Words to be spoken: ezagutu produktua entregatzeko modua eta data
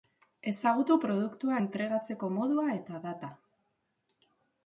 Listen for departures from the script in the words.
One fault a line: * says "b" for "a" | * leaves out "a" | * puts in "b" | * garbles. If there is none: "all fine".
all fine